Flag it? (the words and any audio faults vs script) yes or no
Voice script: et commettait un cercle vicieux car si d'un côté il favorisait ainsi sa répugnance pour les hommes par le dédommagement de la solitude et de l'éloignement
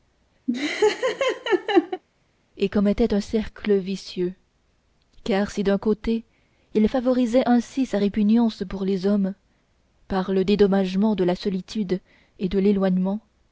yes